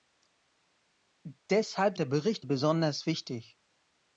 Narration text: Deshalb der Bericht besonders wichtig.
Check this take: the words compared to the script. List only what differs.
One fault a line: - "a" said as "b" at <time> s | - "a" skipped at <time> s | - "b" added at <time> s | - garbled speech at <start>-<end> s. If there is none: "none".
none